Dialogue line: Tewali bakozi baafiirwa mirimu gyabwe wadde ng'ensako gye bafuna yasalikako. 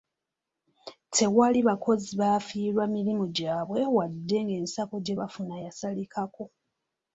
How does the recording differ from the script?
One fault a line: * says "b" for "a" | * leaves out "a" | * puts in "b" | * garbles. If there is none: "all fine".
all fine